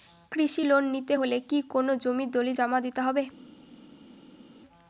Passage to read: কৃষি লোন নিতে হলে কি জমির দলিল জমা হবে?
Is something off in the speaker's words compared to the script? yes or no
yes